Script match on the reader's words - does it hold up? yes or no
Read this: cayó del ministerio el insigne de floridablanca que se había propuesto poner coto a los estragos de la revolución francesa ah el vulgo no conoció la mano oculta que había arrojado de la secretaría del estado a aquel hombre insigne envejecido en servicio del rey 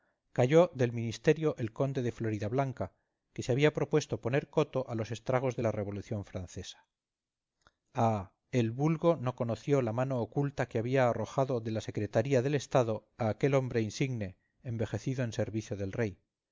no